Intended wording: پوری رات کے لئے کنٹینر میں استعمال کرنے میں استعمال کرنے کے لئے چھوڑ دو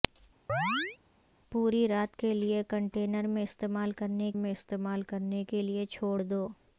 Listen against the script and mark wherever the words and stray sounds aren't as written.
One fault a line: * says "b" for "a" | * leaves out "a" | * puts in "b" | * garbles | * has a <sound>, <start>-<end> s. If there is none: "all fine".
* has a chirp, 0.5-1.0 s